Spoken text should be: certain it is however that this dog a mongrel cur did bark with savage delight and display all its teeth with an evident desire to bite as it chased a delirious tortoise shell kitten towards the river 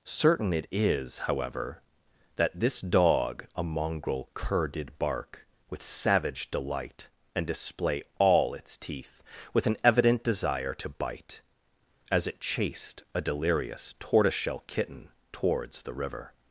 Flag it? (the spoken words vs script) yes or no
no